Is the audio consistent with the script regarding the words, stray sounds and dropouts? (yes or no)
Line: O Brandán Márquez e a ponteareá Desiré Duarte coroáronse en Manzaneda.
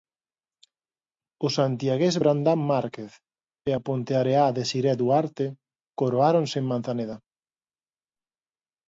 no